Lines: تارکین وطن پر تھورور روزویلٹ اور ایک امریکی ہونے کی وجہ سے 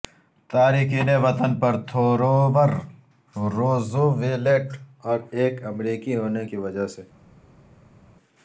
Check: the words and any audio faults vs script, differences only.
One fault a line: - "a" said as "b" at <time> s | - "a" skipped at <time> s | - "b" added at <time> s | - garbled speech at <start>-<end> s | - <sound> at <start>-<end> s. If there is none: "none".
none